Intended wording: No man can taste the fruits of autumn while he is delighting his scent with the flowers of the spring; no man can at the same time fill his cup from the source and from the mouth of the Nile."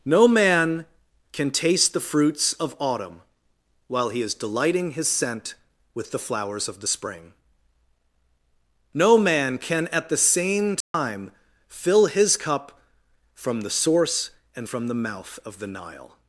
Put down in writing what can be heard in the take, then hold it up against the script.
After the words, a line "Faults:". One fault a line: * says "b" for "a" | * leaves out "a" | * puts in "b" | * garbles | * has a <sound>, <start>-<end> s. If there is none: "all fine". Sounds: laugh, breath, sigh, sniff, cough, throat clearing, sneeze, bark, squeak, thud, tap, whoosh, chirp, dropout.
No man can taste the fruits of autumn while he is delighting his scent with the flowers of the spring; no man can at the same time fill his cup from the source and from the mouth of the Nile."
Faults:
* has a dropout, 10.8-10.9 s